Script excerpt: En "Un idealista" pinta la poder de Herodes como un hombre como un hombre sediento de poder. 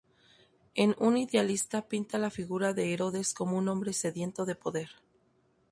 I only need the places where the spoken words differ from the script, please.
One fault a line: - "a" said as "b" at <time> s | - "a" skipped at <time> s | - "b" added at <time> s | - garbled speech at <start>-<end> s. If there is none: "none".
- "poder" said as "figura" at 2.3 s
- "como un hombre" skipped at 3.9 s